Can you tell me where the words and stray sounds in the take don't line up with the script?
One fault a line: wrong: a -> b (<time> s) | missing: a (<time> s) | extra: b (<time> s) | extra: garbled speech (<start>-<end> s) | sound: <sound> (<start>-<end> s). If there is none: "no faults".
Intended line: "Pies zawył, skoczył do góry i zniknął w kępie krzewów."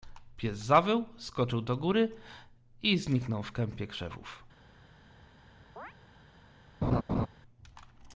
sound: chirp (5.8-5.9 s)
sound: laugh (6.8-7.3 s)